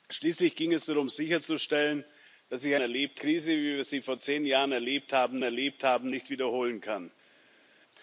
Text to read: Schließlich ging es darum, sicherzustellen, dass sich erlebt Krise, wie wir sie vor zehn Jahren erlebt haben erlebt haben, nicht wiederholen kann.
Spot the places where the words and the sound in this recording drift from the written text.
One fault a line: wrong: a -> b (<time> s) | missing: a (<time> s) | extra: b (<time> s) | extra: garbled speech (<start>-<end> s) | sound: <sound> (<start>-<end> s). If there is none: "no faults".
no faults